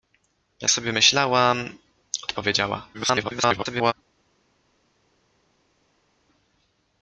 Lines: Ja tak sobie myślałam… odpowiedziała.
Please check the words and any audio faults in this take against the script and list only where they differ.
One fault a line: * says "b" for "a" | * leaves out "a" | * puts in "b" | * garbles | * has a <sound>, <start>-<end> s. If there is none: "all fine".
* leaves out "tak"
* garbles